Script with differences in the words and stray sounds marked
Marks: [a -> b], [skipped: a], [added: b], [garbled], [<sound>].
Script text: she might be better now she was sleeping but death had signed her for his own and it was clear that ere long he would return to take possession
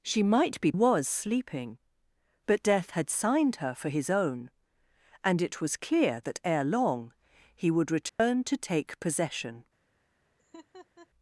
she might be [skipped: better now she] was sleeping but death had signed her for his own and it was clear that ere long he would return [dropout] to take possession [laugh]